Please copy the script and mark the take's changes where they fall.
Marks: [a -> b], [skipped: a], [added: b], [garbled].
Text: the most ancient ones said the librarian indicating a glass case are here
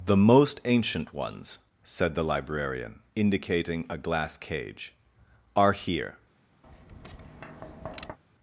the most ancient ones said the librarian indicating a glass [case -> cage] are here